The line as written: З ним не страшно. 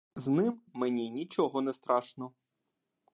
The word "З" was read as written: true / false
true